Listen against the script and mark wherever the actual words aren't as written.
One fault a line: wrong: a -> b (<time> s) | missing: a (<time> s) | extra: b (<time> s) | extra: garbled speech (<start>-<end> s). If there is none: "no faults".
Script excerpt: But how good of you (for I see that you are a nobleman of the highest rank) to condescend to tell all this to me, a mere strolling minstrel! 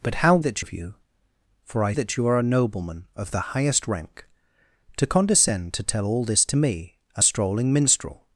wrong: good -> that (0.4 s)
missing: see (1.9 s)
missing: mere (7.2 s)